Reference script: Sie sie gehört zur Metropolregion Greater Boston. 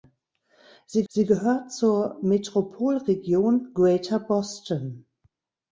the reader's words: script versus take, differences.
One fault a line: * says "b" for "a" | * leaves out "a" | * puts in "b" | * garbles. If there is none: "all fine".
all fine